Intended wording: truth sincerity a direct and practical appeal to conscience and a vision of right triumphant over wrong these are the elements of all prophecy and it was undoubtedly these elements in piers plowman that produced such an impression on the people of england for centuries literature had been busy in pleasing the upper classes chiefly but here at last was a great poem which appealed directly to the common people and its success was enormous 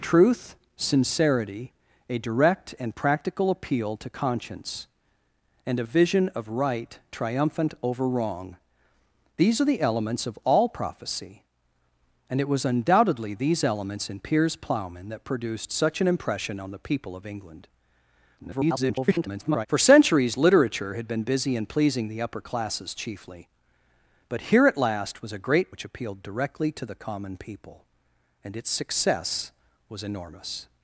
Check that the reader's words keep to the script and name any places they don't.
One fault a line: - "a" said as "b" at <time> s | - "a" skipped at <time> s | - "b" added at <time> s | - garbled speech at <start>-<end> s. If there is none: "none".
- garbled speech at 18.4-19.7 s
- "poem" skipped at 25.7 s